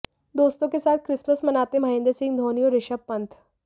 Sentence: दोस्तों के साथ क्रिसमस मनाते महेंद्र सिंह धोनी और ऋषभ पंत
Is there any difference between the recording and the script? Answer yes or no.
no